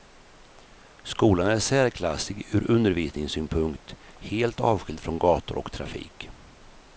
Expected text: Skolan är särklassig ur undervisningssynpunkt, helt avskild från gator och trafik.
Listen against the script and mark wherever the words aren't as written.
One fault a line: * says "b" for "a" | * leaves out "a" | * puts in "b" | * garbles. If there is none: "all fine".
all fine